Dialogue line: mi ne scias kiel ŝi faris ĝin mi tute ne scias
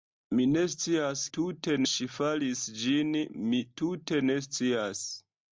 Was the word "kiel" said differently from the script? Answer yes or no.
yes